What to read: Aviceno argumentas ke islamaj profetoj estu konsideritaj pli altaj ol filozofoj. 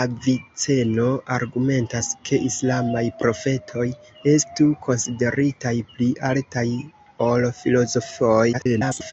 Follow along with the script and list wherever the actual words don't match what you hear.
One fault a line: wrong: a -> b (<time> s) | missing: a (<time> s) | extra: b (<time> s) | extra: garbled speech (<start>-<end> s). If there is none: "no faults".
extra: garbled speech (8.5-9.1 s)